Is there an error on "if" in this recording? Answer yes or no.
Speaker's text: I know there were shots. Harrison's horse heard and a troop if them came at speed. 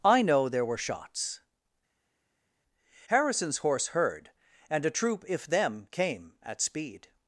no